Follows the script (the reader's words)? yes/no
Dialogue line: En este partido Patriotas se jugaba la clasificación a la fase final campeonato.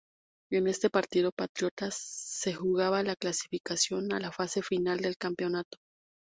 no